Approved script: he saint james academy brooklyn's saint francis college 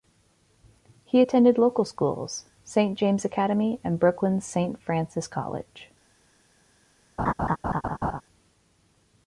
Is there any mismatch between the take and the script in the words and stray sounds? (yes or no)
yes